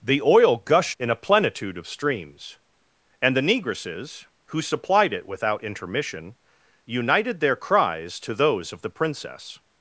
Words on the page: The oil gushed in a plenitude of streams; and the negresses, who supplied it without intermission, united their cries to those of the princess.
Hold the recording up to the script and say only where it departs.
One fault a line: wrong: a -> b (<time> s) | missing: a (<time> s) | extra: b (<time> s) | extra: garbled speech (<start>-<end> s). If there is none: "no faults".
no faults